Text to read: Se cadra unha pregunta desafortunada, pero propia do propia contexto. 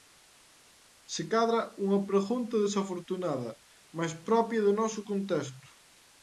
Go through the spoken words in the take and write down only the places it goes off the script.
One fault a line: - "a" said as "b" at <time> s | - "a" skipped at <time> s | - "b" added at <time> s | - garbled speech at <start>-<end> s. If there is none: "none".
- "pero" said as "mais" at 4.0 s
- "propia" said as "noso" at 4.8 s